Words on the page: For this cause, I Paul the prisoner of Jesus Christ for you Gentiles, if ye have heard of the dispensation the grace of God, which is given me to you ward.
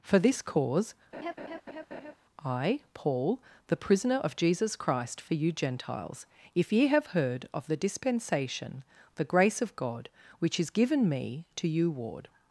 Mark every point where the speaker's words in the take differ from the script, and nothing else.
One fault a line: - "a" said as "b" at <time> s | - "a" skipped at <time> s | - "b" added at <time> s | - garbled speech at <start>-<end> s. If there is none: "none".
none